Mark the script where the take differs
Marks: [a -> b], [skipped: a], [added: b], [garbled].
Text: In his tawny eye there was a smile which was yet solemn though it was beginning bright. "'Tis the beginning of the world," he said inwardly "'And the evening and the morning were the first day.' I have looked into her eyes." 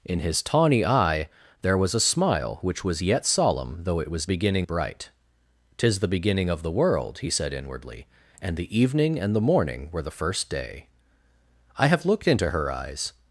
In his tawny eye there was a smile which was yet solemn though it was beginning bright. "'Tis the beginning of the world," he said inwardly "'And the evening and the morning were the first day.' I have looked into her eyes."